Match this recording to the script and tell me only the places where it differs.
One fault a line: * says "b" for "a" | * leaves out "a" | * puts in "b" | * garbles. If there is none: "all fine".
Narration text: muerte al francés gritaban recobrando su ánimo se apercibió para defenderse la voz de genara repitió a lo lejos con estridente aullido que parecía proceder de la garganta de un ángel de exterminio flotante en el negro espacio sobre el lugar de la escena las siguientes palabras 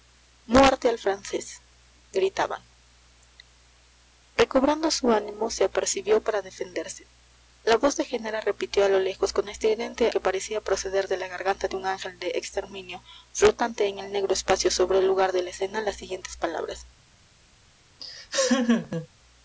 * leaves out "aullido"